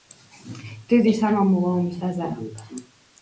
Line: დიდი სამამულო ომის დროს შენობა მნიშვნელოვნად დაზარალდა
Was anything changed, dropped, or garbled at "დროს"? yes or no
yes